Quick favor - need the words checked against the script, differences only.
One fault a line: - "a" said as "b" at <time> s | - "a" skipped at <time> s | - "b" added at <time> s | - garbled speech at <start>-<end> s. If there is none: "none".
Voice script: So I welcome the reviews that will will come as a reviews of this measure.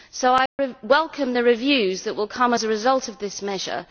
- "will" skipped at 2.3 s
- "reviews" said as "result" at 2.7 s